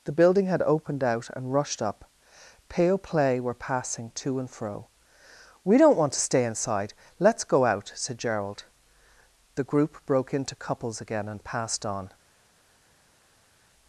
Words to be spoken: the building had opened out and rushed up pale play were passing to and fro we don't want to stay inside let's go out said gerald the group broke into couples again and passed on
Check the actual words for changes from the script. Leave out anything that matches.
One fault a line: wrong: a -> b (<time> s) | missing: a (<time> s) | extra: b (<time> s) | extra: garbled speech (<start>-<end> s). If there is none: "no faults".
no faults